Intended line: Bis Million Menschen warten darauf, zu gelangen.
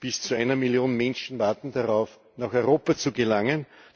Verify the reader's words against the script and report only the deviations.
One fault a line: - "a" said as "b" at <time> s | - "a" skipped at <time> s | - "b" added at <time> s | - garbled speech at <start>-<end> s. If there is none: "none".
- "zu einer" added at 0.2 s
- "nach Europa" added at 2.4 s